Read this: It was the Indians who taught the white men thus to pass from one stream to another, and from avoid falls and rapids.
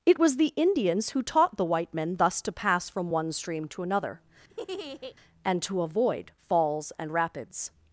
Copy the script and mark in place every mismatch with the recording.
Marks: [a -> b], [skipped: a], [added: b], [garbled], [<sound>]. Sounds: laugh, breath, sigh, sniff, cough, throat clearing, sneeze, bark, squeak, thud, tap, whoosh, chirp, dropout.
It was the Indians who taught the white men thus to pass from one stream to another, [laugh] and [from -> to] avoid falls and rapids.